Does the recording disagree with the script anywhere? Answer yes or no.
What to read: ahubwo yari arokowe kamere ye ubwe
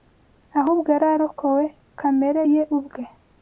no